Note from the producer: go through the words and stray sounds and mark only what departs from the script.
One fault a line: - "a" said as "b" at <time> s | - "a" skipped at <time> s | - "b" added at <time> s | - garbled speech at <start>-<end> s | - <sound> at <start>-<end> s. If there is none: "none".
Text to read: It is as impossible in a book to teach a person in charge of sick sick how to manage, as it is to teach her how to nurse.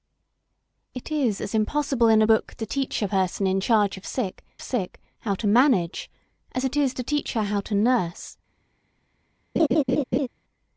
- laugh at 9.6-10.3 s